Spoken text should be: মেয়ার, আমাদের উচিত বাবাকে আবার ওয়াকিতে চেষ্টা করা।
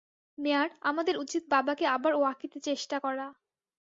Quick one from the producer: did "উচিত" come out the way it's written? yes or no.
yes